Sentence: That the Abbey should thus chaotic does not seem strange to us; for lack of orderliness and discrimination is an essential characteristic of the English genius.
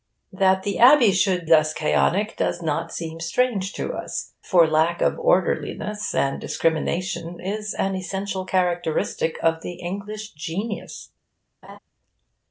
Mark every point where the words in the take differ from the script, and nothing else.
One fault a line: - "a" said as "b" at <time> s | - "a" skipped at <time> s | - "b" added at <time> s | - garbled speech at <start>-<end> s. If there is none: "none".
none